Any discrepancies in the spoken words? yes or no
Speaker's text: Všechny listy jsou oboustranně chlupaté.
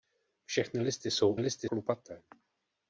yes